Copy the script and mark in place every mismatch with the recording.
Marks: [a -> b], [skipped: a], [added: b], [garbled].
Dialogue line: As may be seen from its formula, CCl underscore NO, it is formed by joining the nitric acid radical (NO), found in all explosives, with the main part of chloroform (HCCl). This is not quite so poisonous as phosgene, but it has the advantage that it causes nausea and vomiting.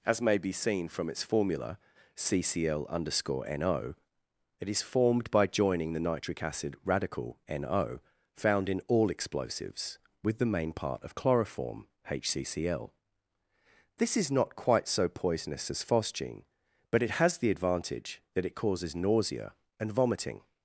As may be seen from its formula, CCl underscore NO, it is formed by joining the nitric acid radical (NO), found in all explosives, with the main part of chloroform (HCCl). This is not quite so poisonous as phosgene, but it has the advantage that it causes nausea and vomiting.